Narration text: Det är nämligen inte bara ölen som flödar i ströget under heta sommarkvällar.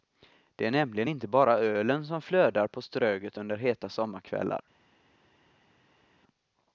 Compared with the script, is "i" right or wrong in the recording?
wrong